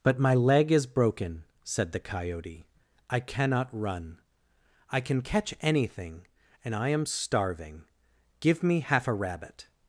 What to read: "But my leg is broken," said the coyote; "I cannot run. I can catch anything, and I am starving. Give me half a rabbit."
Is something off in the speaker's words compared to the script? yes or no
no